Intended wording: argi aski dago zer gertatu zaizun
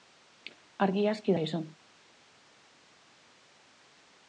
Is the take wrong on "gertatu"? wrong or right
wrong